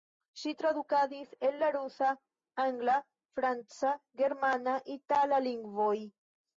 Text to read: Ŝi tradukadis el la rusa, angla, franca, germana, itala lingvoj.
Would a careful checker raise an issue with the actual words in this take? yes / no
no